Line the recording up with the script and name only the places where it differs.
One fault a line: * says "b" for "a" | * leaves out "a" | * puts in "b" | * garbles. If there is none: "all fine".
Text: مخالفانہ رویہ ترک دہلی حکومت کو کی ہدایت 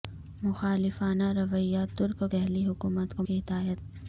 all fine